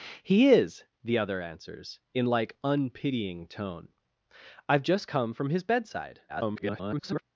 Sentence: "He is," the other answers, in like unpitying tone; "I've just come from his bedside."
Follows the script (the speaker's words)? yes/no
no